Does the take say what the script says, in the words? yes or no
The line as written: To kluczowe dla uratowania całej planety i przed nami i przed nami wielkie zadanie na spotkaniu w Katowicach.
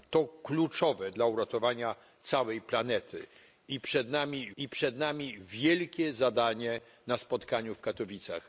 yes